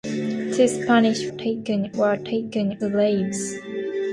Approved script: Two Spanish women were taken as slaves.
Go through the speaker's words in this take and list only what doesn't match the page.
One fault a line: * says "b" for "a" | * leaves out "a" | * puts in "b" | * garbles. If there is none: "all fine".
* says "taken" for "women"
* leaves out "as"